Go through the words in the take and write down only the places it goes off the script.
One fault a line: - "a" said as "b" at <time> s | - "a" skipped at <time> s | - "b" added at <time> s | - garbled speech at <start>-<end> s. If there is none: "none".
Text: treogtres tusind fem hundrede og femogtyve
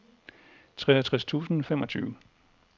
- "fem hundrede og" skipped at 1.6 s